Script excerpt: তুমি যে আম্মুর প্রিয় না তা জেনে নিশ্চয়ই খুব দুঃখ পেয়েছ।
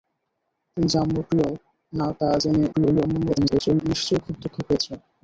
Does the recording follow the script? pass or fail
fail